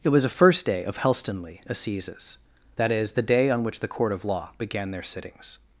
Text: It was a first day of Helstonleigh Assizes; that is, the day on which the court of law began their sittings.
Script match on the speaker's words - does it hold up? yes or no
yes